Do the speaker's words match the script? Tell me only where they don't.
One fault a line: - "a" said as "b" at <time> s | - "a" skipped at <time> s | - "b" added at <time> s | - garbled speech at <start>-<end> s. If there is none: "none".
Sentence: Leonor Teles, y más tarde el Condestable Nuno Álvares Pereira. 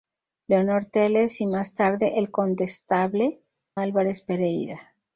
- "Nuno" skipped at 3.4 s